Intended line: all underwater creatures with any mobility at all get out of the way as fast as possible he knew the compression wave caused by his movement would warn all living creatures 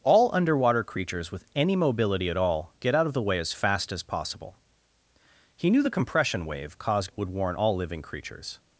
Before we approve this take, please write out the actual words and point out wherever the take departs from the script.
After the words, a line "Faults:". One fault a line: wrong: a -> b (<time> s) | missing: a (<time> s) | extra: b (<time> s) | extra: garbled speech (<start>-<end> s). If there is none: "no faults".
all underwater creatures with any mobility at all get out of the way as fast as possible he knew the compression wave caused would warn all living creatures
Faults:
missing: by his movement (7.1 s)